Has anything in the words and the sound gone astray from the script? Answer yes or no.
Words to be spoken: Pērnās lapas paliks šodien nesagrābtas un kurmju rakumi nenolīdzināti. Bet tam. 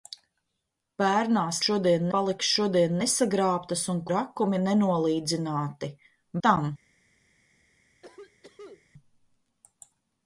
yes